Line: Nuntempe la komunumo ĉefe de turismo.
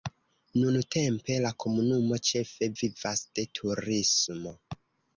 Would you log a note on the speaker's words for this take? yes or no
yes